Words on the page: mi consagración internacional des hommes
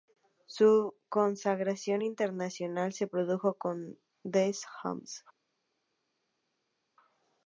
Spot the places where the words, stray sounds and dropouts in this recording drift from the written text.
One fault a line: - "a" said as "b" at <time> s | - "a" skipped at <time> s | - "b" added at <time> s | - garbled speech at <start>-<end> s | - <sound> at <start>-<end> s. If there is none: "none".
- "mi" said as "su" at 0.5 s
- "se produjo con" added at 2.9 s